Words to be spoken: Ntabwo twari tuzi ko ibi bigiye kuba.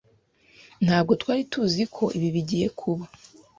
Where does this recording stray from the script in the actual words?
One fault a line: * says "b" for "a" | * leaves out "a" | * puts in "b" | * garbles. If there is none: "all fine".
all fine